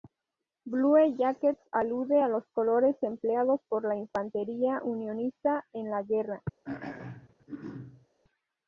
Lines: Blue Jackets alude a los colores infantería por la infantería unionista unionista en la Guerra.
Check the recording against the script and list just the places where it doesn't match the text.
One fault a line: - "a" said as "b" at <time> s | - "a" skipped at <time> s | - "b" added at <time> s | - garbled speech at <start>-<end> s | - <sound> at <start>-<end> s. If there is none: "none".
- "infantería" said as "empleados" at 3.0 s
- "unionista" skipped at 5.7 s
- throat clearing at 6.6-8.1 s